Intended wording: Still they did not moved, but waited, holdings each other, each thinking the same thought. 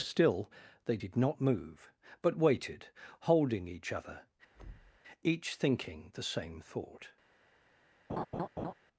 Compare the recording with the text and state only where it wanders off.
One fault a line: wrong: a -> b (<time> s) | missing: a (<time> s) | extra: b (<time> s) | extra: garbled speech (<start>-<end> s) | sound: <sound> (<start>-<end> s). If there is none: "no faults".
wrong: moved -> move (1.4 s)
wrong: holdings -> holding (3.2 s)
sound: thud (4.5-5.0 s)
sound: laugh (8.1-8.7 s)